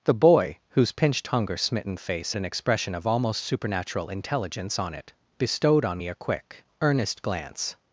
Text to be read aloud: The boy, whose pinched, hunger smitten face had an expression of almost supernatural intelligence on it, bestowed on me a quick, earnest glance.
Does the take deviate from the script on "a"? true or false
false